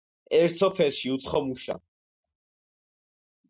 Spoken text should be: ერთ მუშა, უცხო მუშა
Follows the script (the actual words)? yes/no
no